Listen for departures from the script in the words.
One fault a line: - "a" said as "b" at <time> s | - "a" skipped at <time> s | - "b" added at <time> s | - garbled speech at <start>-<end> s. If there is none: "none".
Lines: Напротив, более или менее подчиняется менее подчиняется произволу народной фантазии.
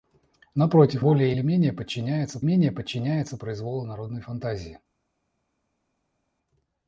none